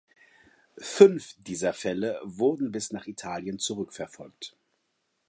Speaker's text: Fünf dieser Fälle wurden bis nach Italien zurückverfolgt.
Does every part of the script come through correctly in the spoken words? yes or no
yes